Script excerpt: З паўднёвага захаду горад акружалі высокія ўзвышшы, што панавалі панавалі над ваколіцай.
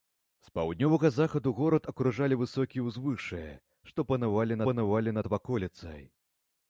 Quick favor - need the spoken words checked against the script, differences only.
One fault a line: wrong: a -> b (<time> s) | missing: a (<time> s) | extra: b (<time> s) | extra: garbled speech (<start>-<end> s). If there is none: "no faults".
no faults